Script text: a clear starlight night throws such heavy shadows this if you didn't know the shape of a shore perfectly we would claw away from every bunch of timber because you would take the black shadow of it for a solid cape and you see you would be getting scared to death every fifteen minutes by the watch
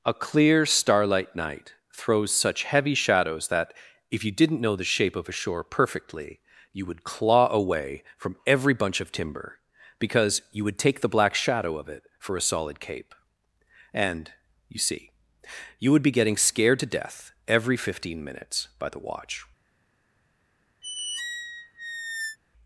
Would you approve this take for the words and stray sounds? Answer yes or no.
no